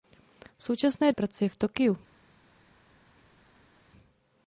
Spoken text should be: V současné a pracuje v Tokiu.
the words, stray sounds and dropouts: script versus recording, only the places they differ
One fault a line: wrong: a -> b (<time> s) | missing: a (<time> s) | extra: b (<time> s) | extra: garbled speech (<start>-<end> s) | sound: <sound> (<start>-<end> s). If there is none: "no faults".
no faults